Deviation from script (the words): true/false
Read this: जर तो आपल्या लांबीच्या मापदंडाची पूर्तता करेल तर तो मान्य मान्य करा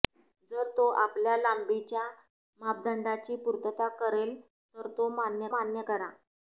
false